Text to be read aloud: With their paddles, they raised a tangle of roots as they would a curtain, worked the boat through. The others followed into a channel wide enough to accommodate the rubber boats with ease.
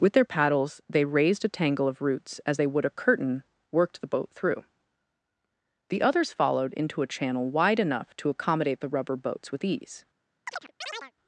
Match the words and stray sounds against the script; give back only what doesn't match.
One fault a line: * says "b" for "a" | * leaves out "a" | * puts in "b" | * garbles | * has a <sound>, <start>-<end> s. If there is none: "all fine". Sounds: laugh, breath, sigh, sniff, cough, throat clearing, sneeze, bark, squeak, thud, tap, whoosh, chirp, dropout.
* has a chirp, 10.5-11.1 s